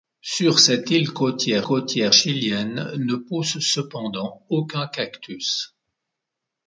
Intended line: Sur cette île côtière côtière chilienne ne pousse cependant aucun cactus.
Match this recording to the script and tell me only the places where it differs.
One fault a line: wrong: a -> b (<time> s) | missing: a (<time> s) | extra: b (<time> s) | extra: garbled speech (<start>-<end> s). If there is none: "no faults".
no faults